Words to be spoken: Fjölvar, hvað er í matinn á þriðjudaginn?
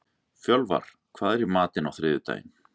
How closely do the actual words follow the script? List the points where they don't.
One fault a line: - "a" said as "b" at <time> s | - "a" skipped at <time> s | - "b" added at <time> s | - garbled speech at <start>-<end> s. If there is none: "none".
none